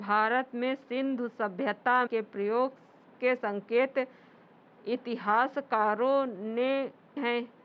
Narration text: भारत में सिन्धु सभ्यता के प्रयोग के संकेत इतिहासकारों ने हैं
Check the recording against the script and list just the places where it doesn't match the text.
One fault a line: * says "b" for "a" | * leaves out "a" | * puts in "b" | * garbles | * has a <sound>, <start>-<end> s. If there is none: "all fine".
all fine